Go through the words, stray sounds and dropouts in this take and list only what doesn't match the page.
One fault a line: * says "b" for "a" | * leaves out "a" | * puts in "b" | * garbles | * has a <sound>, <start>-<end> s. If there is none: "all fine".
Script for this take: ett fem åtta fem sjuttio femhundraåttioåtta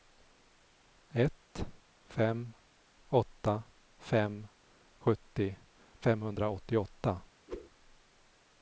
* has a whoosh, 7.5-7.7 s